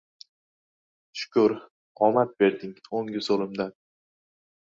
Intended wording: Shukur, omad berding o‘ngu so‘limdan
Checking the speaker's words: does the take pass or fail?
pass